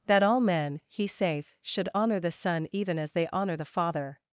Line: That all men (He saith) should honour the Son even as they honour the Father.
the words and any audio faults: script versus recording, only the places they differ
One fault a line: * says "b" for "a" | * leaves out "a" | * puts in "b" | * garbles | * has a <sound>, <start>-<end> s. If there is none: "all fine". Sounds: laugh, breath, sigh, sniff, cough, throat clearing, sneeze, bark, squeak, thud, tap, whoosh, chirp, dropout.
all fine